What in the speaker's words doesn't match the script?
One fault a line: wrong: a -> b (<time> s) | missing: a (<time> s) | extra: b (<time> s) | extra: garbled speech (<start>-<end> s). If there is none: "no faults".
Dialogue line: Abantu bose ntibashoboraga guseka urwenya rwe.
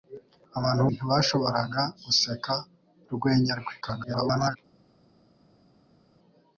missing: bose (0.8 s)
extra: garbled speech (3.8-4.6 s)